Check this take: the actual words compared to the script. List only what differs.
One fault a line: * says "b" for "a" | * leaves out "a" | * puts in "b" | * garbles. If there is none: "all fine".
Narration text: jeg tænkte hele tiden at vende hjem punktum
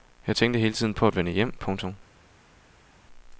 * puts in "på"